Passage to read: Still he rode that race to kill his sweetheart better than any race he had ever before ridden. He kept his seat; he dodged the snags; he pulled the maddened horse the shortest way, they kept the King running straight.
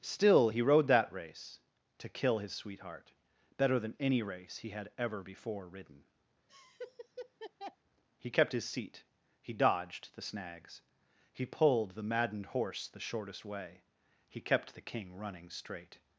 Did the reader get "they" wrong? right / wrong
wrong